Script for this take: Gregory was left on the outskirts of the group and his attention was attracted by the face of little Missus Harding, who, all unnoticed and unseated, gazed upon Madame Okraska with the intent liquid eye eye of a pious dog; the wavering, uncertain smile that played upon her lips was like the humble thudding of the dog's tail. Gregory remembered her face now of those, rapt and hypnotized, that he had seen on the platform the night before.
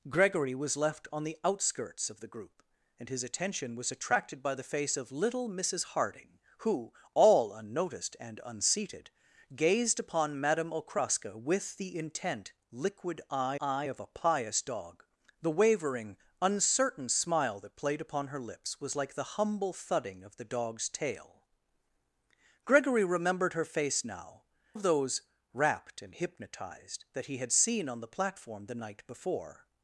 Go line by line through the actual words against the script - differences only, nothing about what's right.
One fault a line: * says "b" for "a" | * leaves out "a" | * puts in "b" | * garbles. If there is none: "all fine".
all fine